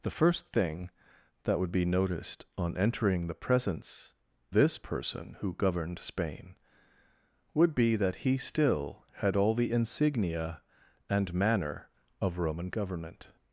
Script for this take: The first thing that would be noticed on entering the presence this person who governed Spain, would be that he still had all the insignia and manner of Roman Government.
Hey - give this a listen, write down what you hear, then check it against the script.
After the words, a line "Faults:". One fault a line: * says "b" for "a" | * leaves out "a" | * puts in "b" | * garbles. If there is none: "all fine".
The first thing that would be noticed on entering the presence this person who governed Spain, would be that he still had all the insignia and manner of Roman Government.
Faults:
all fine